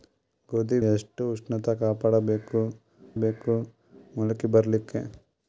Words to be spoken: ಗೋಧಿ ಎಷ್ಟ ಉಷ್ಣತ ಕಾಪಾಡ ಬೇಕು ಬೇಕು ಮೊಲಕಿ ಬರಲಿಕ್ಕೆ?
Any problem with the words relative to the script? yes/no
no